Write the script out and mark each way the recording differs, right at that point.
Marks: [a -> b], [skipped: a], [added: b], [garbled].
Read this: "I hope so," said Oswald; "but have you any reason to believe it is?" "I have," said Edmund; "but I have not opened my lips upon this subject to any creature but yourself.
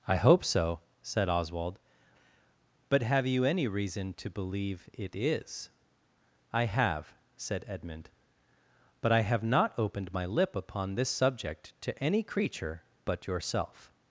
"I hope so," said Oswald; "but have you any reason to believe it is?" "I have," said Edmund; "but I have not opened my [lips -> lip] upon this subject to any creature but yourself.